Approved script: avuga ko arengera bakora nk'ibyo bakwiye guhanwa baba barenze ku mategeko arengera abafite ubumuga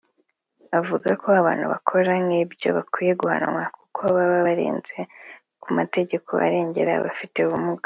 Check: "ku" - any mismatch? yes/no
no